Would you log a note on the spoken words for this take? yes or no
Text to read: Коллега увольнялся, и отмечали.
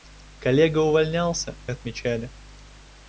no